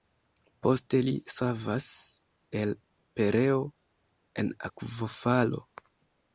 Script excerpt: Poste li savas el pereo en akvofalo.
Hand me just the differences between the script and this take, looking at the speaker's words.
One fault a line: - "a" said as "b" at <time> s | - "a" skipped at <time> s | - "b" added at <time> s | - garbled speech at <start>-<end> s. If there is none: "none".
none